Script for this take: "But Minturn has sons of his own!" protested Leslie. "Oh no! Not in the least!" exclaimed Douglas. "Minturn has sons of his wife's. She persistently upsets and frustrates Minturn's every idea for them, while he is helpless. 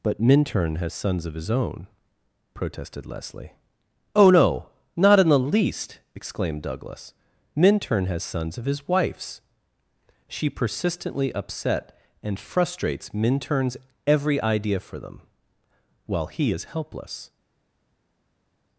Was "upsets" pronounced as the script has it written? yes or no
no